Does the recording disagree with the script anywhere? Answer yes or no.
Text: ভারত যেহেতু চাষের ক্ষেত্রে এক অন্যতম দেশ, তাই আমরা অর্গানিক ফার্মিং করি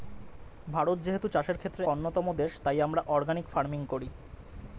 yes